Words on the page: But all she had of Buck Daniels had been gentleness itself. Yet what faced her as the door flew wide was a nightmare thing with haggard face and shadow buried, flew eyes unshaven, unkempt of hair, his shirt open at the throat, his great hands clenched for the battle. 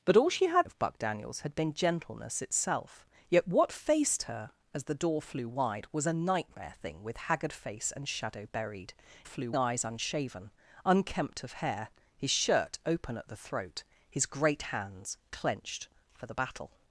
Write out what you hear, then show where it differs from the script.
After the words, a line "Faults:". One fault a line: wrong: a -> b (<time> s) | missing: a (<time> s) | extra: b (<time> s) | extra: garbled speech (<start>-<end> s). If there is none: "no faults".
But all she had of Buck Daniels had been gentleness itself. Yet what faced her as the door flew wide was a nightmare thing with haggard face and shadow buried, flew eyes unshaven, unkempt of hair, his shirt open at the throat, his great hands clenched for the battle.
Faults:
no faults